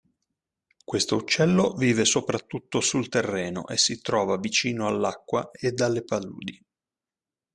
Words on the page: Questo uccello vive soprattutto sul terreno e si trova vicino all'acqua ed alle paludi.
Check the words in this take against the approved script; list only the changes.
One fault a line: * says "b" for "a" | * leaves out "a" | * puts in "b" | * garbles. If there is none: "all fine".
all fine